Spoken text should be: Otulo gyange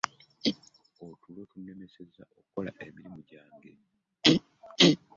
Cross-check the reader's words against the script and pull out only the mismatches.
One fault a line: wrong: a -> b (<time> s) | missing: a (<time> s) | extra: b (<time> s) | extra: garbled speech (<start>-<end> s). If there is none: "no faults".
extra: tunnemesezza okukola emirimu (1.5 s)